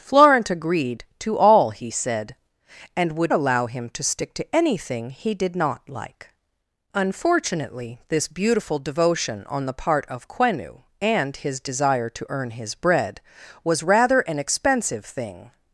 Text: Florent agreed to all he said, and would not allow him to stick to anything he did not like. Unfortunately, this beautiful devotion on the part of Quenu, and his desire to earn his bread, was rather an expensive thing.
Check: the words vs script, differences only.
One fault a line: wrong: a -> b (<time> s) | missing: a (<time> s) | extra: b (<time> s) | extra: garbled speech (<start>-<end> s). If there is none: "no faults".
missing: not (3.3 s)